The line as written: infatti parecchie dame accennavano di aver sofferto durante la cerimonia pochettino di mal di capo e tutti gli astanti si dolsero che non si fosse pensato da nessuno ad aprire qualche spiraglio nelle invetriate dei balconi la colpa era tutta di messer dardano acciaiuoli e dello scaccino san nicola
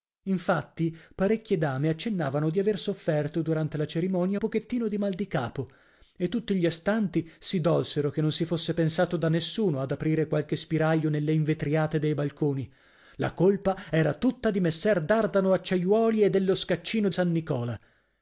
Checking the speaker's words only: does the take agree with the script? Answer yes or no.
yes